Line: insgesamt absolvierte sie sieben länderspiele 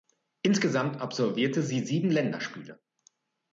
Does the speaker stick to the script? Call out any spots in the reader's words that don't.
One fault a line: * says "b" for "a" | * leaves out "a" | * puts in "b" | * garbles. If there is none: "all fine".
all fine